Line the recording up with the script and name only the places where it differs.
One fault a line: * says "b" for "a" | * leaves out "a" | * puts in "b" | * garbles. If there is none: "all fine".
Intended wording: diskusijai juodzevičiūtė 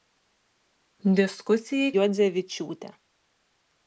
all fine